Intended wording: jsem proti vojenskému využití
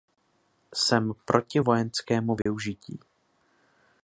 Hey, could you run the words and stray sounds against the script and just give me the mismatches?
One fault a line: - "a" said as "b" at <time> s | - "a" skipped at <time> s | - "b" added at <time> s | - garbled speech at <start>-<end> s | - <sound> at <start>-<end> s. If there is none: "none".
- dropout at 2.4-2.5 s